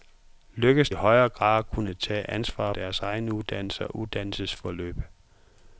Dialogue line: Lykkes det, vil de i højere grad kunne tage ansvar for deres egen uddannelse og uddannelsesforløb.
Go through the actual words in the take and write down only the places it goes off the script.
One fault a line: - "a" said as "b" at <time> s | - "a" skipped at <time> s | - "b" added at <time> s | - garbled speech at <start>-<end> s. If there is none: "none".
- "det vil de" skipped at 0.9 s
- "for" skipped at 2.7 s